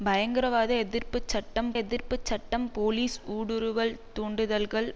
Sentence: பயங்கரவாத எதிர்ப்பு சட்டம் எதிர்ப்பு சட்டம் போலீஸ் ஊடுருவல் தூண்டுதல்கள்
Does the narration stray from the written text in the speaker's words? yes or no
no